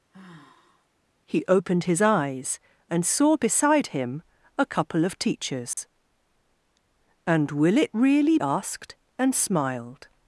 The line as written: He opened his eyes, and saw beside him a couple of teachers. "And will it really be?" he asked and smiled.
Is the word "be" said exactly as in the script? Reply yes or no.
no